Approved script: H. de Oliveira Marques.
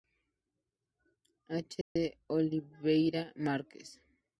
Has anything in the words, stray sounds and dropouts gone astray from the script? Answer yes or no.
yes